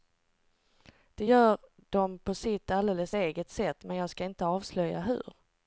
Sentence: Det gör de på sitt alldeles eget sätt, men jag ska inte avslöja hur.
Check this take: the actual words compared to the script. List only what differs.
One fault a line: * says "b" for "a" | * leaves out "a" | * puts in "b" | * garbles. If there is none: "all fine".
all fine